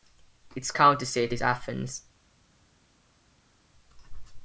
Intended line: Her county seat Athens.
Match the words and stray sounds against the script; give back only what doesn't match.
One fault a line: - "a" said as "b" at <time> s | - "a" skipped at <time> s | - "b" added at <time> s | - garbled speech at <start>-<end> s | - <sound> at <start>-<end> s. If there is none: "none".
- "Her" said as "Its" at 0.6 s
- "is" added at 1.3 s